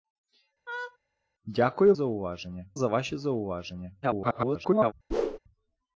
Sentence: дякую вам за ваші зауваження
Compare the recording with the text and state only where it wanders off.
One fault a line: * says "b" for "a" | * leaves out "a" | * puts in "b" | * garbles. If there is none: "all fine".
* says "зауваження" for "вам"
* garbles